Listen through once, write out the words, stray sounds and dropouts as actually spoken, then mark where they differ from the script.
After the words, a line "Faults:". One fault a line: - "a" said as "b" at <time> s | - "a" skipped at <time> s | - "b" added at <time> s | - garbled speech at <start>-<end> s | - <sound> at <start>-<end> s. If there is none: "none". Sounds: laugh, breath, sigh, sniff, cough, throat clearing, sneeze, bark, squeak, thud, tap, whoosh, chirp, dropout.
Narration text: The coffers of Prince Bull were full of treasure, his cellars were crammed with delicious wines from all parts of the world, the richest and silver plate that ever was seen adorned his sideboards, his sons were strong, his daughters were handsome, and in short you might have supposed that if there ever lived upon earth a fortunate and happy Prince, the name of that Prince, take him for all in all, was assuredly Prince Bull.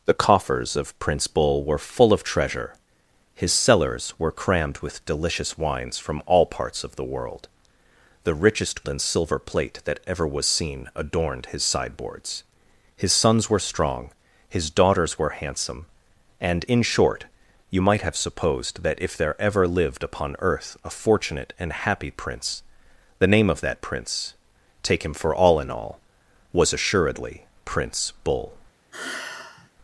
The coffers of Prince Bull were full of treasure, his cellars were crammed with delicious wines from all parts of the world, the richest and silver plate that ever was seen adorned his sideboards, his sons were strong, his daughters were handsome, and in short you might have supposed that if there ever lived upon earth a fortunate and happy Prince, the name of that Prince, take him for all in all, was assuredly Prince Bull.
Faults:
- sigh at 28.9-29.7 s